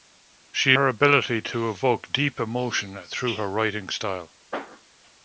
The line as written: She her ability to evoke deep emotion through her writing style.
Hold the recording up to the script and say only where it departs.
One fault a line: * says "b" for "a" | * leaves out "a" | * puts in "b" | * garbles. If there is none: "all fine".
all fine